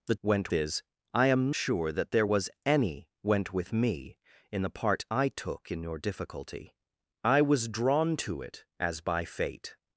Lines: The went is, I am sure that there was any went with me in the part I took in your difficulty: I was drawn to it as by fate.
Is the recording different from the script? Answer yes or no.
no